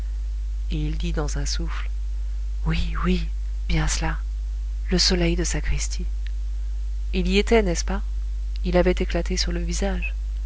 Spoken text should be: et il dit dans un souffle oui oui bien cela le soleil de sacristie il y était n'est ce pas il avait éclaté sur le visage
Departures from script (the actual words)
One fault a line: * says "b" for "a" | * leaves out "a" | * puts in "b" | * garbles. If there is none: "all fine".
all fine